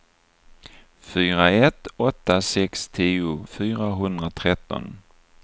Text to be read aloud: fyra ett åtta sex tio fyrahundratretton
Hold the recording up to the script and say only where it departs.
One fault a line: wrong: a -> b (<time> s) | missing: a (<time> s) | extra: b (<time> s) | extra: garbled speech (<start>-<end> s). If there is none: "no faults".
no faults